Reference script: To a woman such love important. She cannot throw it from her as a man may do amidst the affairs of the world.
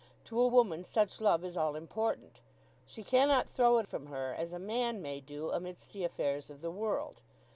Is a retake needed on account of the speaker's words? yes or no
yes